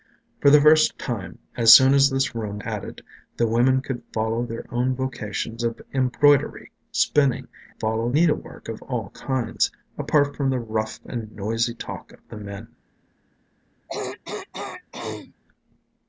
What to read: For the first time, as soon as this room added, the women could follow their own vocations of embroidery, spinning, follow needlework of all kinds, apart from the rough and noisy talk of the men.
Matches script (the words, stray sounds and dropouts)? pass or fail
fail